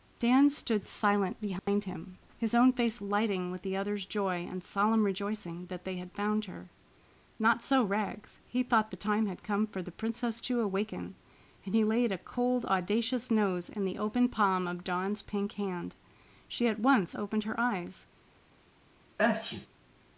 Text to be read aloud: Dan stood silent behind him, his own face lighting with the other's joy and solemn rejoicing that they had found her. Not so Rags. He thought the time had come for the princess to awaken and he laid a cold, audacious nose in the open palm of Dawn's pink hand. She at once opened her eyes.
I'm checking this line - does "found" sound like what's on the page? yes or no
yes